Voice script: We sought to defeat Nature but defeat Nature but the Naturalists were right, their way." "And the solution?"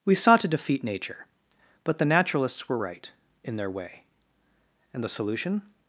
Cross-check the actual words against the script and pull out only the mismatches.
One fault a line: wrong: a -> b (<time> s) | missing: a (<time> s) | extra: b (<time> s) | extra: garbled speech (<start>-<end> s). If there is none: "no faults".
missing: defeat Nature but (2.0 s)
extra: in (3.4 s)